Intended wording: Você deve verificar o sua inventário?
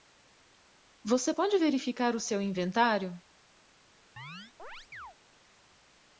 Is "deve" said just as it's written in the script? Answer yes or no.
no